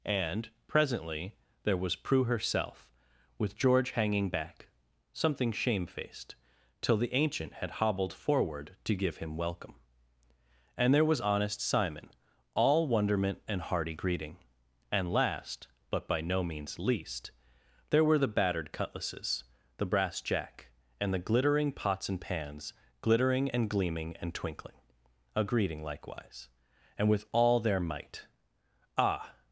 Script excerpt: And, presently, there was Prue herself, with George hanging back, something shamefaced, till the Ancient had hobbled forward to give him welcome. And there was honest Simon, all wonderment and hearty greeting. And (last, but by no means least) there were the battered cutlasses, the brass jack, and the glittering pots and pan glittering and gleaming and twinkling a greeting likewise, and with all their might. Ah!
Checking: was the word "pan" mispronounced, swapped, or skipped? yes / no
yes